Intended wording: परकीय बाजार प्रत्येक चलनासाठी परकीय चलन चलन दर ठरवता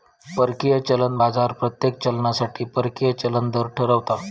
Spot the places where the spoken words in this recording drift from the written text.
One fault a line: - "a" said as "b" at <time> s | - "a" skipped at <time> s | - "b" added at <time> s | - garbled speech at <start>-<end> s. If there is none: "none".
- "चलन" added at 0.8 s
- "चलन" skipped at 3.5 s